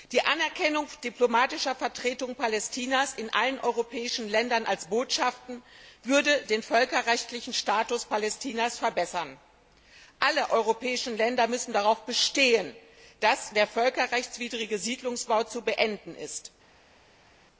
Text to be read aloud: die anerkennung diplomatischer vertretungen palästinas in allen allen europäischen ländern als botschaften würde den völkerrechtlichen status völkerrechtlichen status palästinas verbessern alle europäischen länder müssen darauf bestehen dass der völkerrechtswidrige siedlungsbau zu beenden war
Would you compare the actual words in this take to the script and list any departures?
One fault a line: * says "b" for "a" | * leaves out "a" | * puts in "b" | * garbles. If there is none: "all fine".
* leaves out "allen"
* leaves out "völkerrechtlichen status"
* says "ist" for "war"